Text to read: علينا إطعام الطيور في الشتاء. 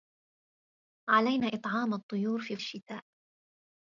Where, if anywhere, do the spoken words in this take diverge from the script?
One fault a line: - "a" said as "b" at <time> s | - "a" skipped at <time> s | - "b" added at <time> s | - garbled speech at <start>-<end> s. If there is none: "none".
none